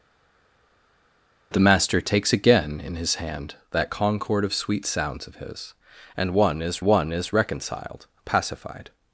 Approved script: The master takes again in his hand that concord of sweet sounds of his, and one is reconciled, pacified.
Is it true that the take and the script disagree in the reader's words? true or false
true